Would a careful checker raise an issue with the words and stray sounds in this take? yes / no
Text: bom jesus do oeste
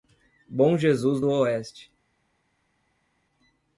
no